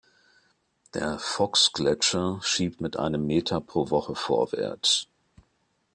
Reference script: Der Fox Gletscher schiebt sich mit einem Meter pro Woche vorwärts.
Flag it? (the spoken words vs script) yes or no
yes